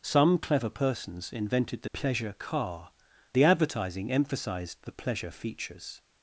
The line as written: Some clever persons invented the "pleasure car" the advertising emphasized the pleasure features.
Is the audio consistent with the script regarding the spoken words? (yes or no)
yes